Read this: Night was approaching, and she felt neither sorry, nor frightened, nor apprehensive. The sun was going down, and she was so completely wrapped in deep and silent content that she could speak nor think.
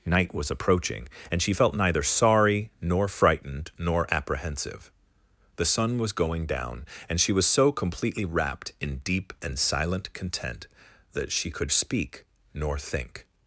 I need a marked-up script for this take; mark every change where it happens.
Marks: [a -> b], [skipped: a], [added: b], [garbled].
Night was approaching, and she felt neither sorry, nor frightened, nor apprehensive. The sun was going down, and she was so completely wrapped in deep and silent content that she could speak nor think.